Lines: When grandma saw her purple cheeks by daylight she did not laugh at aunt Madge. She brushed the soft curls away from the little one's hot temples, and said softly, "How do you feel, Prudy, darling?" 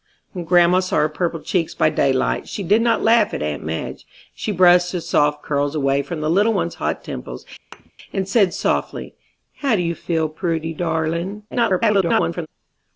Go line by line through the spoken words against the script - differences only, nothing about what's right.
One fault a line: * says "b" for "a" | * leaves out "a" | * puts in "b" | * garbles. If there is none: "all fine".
* garbles